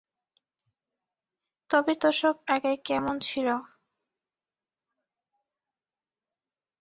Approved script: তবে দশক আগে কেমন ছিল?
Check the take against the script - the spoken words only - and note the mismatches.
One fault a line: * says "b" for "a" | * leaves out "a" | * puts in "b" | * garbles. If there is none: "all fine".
all fine